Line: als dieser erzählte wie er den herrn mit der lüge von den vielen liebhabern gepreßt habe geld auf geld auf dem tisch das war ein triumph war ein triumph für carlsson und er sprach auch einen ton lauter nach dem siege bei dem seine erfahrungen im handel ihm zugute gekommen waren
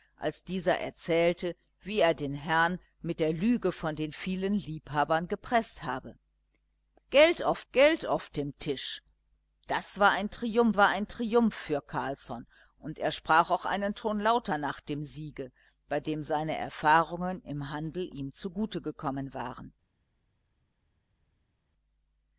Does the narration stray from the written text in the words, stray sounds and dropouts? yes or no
no